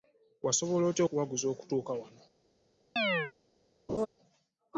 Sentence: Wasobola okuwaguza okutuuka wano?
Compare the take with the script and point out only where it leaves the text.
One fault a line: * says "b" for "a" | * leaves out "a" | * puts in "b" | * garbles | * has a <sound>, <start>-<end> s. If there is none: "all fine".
* puts in "otya"
* has a chirp, 3.0-3.3 s
* has a laugh, 3.9-4.1 s